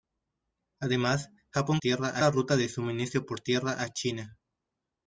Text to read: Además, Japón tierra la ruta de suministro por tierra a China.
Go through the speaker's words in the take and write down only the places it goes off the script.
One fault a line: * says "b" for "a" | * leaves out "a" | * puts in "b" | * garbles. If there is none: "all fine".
all fine